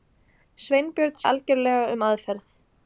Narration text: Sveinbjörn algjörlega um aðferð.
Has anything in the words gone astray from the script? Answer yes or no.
no